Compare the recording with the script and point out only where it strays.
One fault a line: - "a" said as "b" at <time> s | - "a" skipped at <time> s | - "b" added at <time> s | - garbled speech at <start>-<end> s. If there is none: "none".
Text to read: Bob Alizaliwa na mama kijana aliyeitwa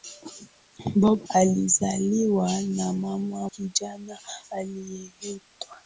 none